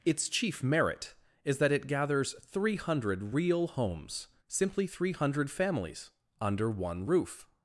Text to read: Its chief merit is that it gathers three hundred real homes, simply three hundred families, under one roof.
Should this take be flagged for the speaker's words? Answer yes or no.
no